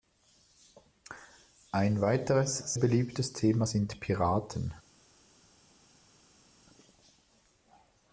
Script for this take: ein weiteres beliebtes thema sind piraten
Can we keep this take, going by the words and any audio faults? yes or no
yes